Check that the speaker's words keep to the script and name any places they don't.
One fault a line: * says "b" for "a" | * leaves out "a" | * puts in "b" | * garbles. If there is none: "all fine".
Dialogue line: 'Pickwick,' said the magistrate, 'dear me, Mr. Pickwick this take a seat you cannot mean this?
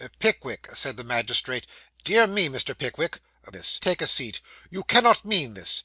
all fine